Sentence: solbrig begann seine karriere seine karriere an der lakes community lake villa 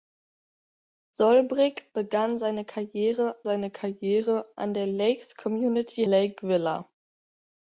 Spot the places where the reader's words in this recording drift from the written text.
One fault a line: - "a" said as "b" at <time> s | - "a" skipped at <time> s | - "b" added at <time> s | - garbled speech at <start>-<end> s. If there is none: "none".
none